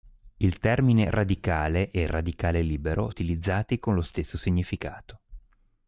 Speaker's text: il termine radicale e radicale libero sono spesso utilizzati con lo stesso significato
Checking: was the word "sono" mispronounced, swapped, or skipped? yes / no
yes